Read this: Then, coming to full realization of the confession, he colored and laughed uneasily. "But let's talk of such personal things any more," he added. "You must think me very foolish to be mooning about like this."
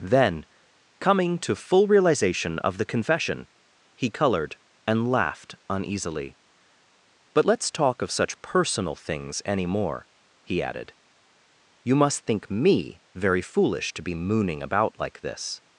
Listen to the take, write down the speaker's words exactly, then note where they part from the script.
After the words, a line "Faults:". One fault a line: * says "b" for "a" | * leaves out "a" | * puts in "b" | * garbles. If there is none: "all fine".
Then, coming to full realization of the confession, he colored and laughed uneasily. "But let's talk of such personal things any more," he added. "You must think me very foolish to be mooning about like this."
Faults:
all fine